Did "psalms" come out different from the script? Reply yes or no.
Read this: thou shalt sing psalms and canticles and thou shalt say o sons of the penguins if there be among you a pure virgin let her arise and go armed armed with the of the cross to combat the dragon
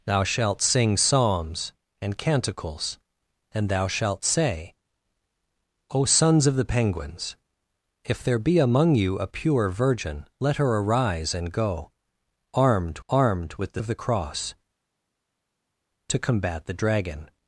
no